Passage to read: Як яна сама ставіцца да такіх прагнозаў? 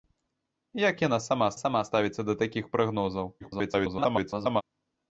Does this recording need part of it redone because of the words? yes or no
yes